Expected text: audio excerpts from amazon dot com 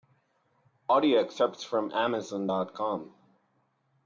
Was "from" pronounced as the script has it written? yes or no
yes